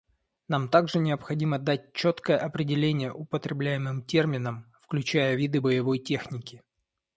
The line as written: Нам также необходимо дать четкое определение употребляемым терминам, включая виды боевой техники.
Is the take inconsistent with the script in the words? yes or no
no